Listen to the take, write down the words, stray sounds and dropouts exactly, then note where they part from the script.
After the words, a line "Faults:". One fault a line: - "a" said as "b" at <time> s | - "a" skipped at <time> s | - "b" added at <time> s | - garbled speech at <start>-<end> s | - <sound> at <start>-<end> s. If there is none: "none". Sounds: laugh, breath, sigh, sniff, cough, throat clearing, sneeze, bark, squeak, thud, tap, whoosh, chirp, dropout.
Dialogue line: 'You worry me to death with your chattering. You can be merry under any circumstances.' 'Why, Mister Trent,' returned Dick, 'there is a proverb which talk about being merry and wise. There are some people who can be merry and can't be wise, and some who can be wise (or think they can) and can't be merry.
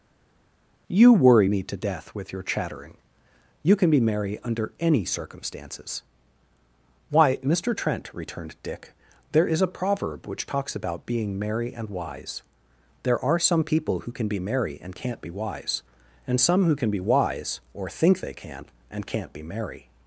'You worry me to death with your chattering. You can be merry under any circumstances.' 'Why, Mister Trent,' returned Dick, 'there is a proverb which talks about being merry and wise. There are some people who can be merry and can't be wise, and some who can be wise (or think they can) and can't be merry.
Faults:
- "talk" said as "talks" at 10.4 s